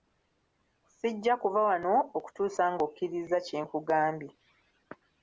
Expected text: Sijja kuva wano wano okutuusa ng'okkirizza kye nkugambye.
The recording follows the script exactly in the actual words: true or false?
false